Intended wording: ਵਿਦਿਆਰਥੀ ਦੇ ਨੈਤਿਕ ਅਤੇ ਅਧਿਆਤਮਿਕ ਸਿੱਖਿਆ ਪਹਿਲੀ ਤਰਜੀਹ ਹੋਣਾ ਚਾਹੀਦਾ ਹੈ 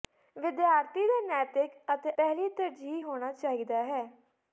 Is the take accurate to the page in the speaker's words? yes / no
no